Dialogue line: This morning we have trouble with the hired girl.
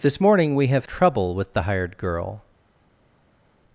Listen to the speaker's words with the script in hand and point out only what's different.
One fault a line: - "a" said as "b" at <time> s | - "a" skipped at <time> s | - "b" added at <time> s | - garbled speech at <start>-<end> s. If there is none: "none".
none